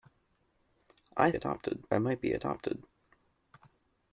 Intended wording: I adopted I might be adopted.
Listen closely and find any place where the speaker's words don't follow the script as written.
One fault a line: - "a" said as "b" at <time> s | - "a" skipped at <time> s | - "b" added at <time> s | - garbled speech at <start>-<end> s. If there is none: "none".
none